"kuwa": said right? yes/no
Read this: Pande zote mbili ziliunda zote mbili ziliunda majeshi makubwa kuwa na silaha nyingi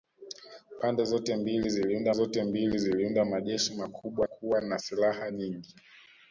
yes